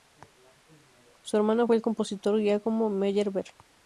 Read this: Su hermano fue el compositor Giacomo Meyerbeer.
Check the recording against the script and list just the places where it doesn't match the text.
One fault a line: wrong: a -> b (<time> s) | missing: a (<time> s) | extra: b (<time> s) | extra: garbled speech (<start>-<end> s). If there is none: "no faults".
no faults